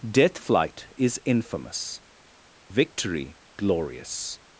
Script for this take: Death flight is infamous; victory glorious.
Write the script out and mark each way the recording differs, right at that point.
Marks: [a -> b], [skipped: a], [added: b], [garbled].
Death flight is infamous; victory glorious.